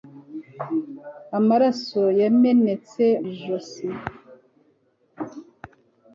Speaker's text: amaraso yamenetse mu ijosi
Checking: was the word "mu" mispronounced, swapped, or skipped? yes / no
yes